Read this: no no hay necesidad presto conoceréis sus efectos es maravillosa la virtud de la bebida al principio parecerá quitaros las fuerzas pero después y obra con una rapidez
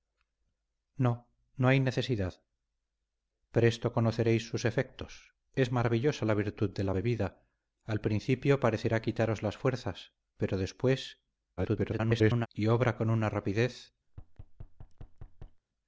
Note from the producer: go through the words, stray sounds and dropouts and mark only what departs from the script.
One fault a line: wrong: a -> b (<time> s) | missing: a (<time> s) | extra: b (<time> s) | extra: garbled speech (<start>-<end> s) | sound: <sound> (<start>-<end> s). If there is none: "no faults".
extra: garbled speech (11.6-12.5 s)
sound: thud (14.1-15.6 s)